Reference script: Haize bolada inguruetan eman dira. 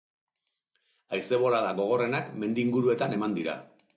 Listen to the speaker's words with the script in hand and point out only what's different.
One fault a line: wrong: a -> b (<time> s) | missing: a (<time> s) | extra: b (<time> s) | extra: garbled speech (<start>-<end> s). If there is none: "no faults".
extra: gogorrenak mendi (1.8 s)